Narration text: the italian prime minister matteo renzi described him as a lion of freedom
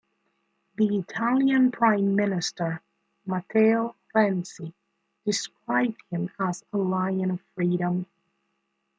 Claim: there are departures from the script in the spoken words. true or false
false